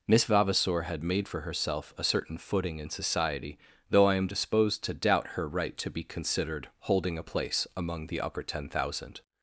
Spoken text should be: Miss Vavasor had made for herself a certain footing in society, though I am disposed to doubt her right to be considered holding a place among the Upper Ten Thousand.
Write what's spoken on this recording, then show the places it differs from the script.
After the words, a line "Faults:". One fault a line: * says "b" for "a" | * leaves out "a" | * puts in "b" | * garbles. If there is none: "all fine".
Miss Vavasor had made for herself a certain footing in society, though I am disposed to doubt her right to be considered holding a place among the Upper Ten Thousand.
Faults:
all fine